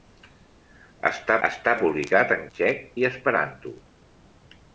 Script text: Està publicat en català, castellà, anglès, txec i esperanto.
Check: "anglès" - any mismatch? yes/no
yes